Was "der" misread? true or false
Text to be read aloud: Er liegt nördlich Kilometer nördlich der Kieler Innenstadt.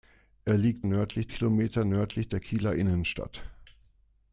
false